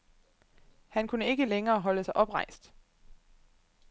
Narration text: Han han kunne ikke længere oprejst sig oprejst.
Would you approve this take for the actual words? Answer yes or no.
no